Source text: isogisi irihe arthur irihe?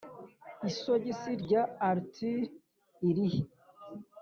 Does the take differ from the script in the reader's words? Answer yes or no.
yes